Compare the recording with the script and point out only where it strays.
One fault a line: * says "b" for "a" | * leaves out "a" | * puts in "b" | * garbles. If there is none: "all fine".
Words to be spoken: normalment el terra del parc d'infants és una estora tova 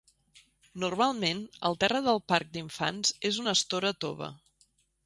all fine